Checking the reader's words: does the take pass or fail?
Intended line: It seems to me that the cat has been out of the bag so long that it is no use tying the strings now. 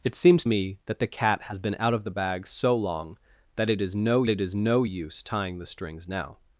fail